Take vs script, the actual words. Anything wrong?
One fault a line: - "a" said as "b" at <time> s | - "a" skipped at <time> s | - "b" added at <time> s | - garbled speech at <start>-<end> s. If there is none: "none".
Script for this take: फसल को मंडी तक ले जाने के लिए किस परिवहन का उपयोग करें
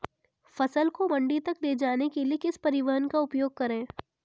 none